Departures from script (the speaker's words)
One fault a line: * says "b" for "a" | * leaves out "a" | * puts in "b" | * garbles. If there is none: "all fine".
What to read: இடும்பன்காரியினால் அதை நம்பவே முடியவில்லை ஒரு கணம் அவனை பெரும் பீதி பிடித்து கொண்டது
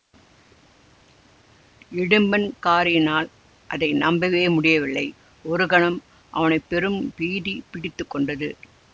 all fine